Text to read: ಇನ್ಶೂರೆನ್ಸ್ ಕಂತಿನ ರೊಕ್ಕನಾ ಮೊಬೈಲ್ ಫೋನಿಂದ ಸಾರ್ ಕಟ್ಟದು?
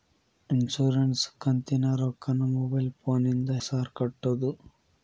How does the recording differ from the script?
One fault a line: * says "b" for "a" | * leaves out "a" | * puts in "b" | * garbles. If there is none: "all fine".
all fine